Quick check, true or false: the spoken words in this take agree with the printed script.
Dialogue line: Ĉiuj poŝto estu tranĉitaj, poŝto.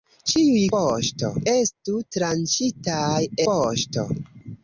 true